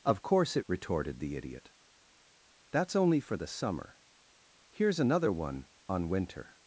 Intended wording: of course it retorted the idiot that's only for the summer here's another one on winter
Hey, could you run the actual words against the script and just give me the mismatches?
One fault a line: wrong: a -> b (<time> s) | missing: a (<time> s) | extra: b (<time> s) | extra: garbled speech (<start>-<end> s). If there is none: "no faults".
no faults